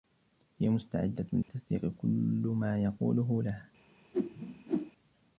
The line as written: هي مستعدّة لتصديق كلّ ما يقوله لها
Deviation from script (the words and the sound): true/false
true